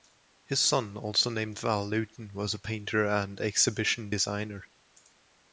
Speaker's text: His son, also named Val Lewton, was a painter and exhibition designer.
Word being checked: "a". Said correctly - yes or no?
yes